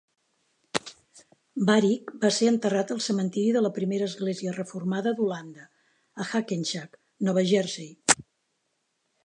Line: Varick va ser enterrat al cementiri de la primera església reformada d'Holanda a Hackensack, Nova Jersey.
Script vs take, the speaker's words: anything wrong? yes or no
no